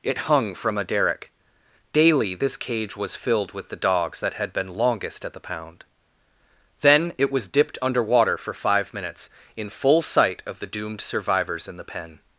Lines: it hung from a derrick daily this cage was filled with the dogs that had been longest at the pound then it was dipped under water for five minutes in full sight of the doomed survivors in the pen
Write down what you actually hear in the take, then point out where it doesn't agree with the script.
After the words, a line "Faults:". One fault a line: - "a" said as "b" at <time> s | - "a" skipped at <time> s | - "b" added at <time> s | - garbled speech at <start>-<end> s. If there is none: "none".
it hung from a derrick daily this cage was filled with the dogs that had been longest at the pound then it was dipped under water for five minutes in full sight of the doomed survivors in the pen
Faults:
none